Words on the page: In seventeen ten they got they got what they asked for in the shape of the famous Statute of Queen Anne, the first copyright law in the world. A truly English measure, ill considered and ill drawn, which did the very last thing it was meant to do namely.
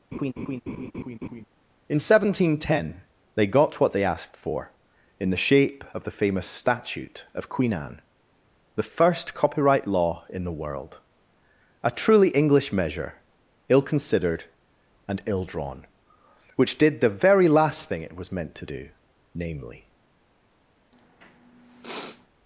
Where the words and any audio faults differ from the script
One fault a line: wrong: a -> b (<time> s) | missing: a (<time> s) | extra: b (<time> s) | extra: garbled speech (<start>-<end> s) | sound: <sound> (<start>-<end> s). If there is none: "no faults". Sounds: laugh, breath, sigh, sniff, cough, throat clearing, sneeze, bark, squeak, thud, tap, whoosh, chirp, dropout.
sound: laugh (0.1-1.4 s)
missing: they got (3.8 s)
sound: sniff (20.9-22.3 s)